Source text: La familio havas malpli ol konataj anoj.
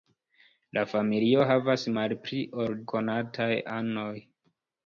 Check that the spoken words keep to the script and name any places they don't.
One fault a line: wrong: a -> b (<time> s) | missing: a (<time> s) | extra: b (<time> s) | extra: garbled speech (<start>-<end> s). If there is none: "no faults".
no faults